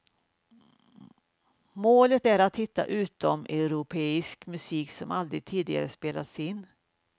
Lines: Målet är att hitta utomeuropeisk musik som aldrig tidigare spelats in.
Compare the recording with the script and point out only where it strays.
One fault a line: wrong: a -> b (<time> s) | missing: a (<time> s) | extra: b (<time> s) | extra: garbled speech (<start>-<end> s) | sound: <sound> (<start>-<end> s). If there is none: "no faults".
no faults